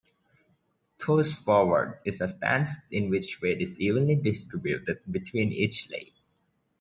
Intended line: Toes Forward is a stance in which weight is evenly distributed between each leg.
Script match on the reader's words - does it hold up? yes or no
yes